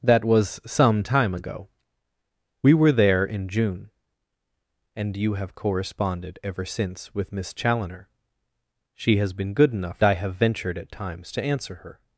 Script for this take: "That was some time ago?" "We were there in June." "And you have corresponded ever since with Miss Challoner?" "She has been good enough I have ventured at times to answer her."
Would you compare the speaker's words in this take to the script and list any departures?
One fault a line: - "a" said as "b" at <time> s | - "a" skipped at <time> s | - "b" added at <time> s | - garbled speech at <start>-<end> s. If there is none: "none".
none